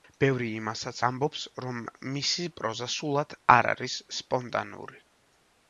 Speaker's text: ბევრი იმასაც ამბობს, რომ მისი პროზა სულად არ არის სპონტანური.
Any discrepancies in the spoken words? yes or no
no